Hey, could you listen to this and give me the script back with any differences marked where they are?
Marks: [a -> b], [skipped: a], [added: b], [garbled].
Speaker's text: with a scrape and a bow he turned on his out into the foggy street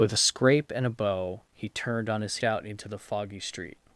with a scrape and a bow he turned on his out into the foggy street